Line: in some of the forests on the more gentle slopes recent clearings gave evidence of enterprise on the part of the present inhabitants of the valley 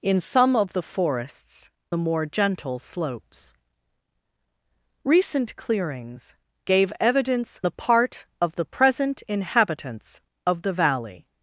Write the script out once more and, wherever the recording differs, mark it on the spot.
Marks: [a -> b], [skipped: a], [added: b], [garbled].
in some of the forests [skipped: on] the more gentle slopes recent clearings gave evidence [skipped: of enterprise on] the part of the present inhabitants of the valley